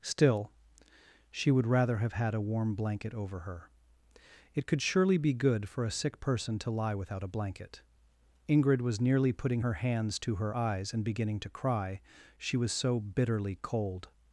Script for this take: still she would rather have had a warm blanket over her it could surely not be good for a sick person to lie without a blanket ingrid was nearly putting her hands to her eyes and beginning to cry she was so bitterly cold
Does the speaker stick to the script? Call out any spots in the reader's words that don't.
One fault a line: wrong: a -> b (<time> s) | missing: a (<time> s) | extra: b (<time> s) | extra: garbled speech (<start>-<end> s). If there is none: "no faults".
missing: not (5.2 s)